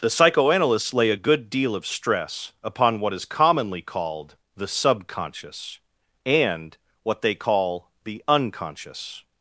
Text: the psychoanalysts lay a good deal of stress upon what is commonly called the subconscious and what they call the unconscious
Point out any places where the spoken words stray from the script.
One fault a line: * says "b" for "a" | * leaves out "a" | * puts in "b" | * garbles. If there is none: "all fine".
all fine